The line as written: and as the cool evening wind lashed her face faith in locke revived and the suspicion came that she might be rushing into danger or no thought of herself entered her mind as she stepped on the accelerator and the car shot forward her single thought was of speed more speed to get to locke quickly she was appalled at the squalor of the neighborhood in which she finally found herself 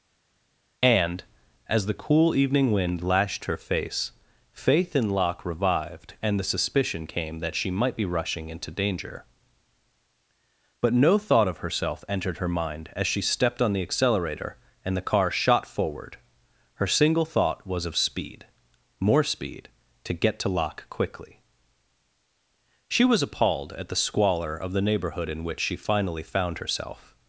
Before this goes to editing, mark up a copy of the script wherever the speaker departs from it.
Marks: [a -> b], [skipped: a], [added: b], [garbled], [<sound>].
and as the cool evening wind lashed her face faith in locke revived and the suspicion came that she might be rushing into danger [or -> but] no thought of herself entered her mind as she stepped on the accelerator and the car shot forward her single thought was of speed more speed to get to locke quickly she was appalled at the squalor of the neighborhood in which she finally found herself